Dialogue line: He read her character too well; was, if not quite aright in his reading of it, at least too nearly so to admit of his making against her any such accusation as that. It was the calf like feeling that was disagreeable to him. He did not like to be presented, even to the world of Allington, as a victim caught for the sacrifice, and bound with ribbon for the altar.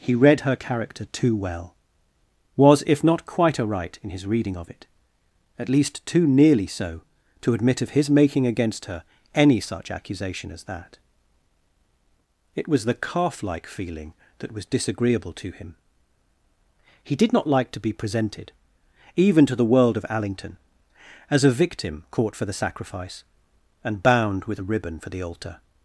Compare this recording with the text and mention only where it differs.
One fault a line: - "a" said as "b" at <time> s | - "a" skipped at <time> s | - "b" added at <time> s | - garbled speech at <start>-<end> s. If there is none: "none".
- "a" added at 24.6 s